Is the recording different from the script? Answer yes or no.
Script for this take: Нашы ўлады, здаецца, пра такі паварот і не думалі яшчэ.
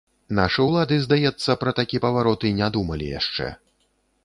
no